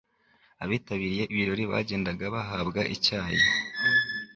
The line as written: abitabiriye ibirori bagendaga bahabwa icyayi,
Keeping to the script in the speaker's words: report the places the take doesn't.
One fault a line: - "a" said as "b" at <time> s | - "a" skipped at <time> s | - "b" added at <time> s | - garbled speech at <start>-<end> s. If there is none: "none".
none